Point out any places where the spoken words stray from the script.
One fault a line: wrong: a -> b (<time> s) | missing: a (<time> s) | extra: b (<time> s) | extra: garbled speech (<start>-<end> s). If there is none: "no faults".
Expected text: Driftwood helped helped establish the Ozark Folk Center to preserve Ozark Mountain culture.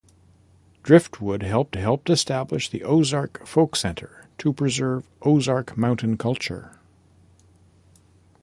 no faults